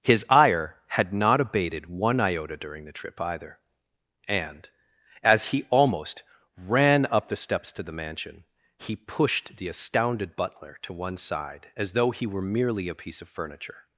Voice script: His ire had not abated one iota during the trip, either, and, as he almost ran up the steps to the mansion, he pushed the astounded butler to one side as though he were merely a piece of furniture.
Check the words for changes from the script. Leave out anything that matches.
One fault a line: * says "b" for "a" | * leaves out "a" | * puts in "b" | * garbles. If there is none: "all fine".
all fine